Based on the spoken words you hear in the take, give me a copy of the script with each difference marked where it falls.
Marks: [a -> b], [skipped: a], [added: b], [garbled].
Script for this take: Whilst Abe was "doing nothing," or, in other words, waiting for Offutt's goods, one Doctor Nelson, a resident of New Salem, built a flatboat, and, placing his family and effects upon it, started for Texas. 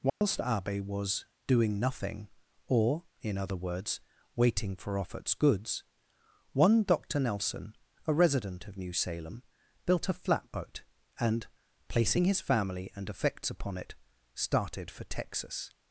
Whilst Abe was "doing nothing," or, in other words, waiting for Offutt's goods, one Doctor Nelson, a resident of New Salem, built a flatboat, and, placing his family and effects upon it, started for Texas.